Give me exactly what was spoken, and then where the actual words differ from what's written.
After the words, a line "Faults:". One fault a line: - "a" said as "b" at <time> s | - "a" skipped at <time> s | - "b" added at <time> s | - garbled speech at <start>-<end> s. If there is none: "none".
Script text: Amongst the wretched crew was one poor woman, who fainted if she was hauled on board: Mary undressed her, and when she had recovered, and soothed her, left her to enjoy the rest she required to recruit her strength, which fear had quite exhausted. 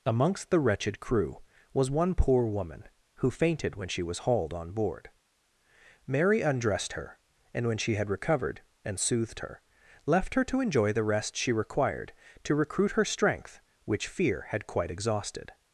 Amongst the wretched crew was one poor woman, who fainted when she was hauled on board: Mary undressed her, and when she had recovered, and soothed her, left her to enjoy the rest she required to recruit her strength, which fear had quite exhausted.
Faults:
- "if" said as "when" at 3.8 s